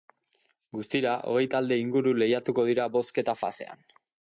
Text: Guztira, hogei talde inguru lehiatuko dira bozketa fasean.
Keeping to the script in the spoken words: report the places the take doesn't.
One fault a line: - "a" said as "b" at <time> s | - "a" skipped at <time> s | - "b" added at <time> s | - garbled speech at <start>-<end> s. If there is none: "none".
none